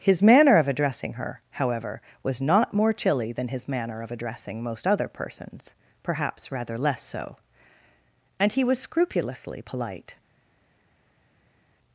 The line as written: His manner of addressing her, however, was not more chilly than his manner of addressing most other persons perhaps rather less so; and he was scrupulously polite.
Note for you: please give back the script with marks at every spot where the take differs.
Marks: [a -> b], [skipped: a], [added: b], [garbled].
His manner of addressing her, however, was not more chilly than his manner of addressing most other persons perhaps rather less so; and he was scrupulously polite.